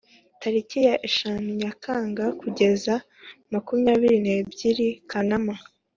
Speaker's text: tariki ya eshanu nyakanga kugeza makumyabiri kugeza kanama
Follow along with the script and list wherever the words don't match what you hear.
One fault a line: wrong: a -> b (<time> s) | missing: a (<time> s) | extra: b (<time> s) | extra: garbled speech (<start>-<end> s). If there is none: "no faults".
wrong: kugeza -> n'ebyiri (4.2 s)